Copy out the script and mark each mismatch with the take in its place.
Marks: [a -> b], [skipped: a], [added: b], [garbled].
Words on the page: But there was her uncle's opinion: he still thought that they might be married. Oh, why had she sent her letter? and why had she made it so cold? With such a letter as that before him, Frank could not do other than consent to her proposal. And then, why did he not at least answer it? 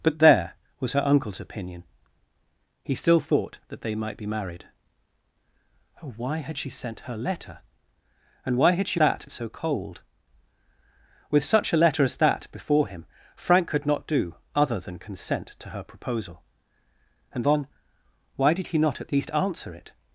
But there was her uncle's opinion: he still thought that they might be married. Oh, why had she sent her letter? and why had she [made -> that] it so cold? With such a letter as that before him, Frank could not do other than consent to her proposal. And then, why did he not at least answer it?